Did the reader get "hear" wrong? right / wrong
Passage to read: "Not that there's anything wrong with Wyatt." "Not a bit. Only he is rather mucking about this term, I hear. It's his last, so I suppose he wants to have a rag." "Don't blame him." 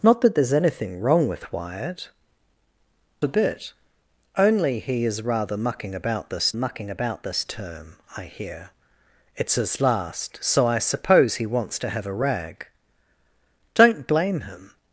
right